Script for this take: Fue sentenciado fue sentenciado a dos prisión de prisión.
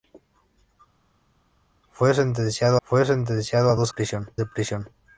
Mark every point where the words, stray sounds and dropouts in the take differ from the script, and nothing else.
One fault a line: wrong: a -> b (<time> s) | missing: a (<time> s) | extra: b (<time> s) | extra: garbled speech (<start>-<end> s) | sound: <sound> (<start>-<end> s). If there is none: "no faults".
no faults